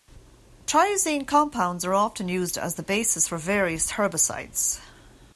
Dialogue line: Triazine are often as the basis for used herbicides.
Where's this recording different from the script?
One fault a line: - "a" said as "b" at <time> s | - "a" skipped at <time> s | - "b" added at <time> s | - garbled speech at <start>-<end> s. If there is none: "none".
- "compounds" added at 1.3 s
- "used" added at 2.3 s
- "used" said as "various" at 3.4 s